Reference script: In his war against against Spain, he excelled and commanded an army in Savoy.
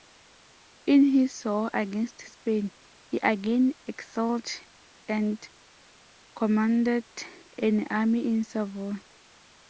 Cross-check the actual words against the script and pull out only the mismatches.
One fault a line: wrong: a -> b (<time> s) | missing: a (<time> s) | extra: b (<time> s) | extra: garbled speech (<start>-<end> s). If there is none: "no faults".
missing: against (2.2 s)
extra: again (3.2 s)